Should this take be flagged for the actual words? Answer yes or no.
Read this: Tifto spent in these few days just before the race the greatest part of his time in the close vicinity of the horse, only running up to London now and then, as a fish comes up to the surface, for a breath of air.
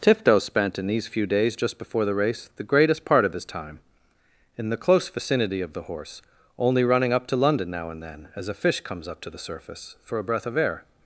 no